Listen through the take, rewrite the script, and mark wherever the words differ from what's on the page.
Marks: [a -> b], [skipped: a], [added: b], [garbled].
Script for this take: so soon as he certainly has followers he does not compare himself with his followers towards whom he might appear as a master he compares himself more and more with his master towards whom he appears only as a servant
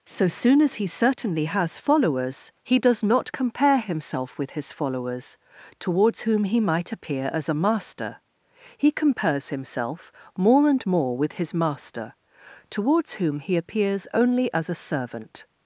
so soon as he certainly has followers he does not compare himself with his followers towards whom he might appear as a master he compares himself more and more with his master towards whom he appears only as a servant